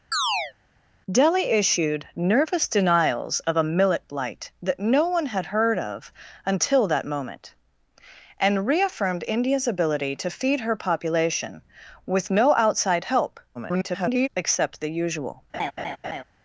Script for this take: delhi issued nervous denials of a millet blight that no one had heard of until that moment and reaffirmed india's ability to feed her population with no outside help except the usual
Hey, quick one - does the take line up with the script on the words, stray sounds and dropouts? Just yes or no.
no